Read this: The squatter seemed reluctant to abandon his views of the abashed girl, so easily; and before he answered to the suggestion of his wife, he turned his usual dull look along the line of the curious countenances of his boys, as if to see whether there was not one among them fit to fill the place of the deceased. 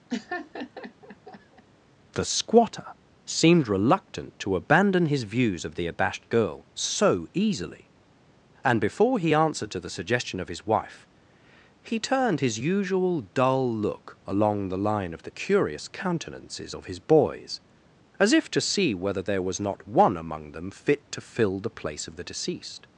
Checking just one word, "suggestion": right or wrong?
right